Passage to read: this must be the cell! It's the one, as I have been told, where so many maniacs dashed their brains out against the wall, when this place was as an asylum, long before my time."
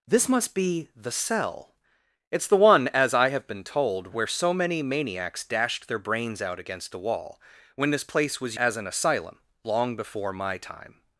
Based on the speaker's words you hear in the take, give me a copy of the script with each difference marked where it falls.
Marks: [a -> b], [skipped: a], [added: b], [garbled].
this must be the cell! It's the one, as I have been told, where so many maniacs dashed their brains out against the wall, when this place was as an asylum, long before my time."